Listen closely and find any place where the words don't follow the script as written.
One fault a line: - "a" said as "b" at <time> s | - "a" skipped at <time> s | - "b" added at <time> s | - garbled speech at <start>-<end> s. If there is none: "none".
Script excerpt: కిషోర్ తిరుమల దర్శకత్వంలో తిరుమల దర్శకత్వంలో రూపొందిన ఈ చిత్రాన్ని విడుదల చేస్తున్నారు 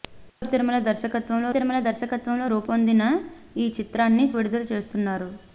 none